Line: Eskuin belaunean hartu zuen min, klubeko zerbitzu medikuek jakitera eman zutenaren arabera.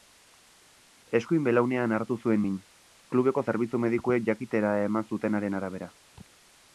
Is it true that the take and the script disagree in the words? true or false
false